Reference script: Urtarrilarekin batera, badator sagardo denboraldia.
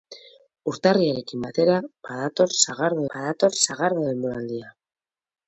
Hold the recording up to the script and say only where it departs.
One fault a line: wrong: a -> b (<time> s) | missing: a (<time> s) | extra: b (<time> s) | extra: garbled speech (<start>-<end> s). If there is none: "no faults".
extra: badator sagardo (3.1 s)